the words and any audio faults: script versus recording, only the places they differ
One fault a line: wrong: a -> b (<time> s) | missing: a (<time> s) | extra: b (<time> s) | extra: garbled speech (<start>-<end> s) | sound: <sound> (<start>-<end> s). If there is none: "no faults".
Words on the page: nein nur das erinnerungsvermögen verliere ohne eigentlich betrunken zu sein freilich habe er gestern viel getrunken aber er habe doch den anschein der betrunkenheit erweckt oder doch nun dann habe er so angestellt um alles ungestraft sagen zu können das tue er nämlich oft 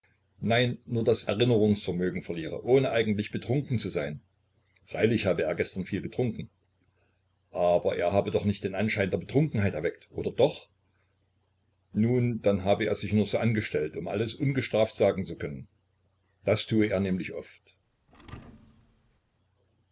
extra: nicht (8.5 s)
extra: sich nur (13.0 s)
sound: thud (18.1-19.2 s)